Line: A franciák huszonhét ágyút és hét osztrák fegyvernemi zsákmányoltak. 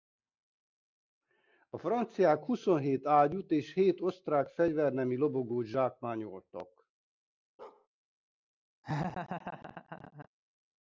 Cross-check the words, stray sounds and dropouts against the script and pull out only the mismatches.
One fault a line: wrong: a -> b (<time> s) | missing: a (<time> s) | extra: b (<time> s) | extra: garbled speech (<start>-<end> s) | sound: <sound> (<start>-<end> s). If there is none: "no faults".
extra: lobogót (5.2 s)
sound: bark (7.6-7.9 s)
sound: laugh (8.8-10.3 s)